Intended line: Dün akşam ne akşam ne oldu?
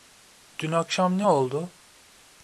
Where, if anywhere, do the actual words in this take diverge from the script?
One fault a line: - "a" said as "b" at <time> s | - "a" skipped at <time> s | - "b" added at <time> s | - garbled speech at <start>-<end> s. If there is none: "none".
- "akşam ne" skipped at 1.3 s